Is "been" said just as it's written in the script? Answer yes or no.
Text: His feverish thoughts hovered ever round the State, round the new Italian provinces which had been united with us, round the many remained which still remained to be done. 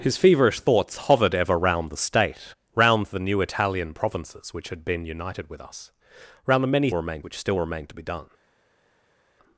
yes